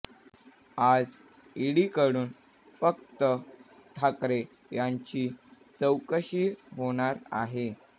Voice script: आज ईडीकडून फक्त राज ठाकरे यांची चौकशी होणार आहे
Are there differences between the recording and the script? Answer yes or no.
yes